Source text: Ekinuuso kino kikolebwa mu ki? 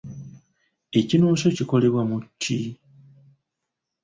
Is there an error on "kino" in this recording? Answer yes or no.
yes